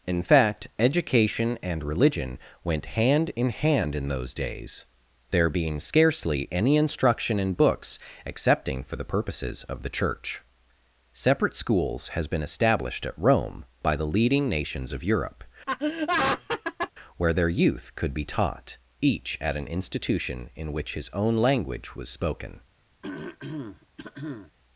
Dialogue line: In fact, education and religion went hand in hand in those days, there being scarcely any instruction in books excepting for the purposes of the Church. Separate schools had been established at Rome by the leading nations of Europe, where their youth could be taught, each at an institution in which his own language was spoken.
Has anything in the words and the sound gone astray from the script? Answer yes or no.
yes